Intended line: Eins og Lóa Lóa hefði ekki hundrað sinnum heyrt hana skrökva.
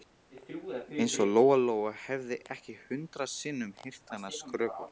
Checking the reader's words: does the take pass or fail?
pass